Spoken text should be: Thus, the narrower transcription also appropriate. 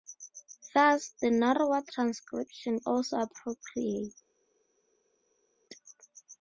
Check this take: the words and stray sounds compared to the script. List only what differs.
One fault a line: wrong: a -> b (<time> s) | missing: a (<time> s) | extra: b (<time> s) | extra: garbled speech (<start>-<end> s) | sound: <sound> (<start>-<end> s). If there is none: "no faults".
no faults